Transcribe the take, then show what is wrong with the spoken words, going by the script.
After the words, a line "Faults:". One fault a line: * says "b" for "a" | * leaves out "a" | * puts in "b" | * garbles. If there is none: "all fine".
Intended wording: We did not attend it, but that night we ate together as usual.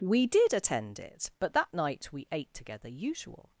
We did attend it, but that night we ate together usual.
Faults:
* leaves out "not"
* leaves out "as"